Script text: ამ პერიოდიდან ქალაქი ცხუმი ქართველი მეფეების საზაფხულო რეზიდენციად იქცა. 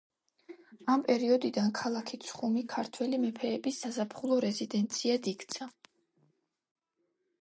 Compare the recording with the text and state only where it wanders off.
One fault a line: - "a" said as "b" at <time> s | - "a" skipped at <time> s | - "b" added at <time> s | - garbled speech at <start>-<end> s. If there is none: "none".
none